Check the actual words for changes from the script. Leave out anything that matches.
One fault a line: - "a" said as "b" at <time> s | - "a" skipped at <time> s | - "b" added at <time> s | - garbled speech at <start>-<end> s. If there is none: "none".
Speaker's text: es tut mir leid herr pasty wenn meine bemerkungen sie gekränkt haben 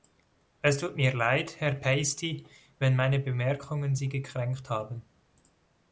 none